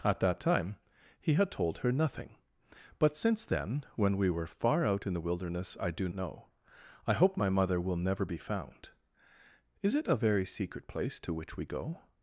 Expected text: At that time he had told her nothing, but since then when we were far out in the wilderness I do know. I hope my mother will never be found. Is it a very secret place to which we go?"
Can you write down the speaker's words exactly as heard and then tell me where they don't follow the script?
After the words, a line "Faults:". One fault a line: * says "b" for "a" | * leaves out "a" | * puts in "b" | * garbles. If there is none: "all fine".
At that time he had told her nothing, but since then when we were far out in the wilderness I do know. I hope my mother will never be found. Is it a very secret place to which we go?"
Faults:
all fine